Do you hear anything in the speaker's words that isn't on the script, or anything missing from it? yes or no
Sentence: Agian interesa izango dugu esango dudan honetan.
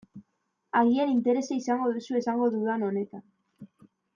yes